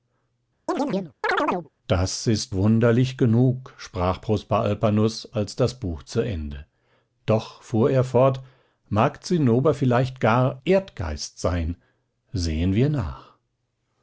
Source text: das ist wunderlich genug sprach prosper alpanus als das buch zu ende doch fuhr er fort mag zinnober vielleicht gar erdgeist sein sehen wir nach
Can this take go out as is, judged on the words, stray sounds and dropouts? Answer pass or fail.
fail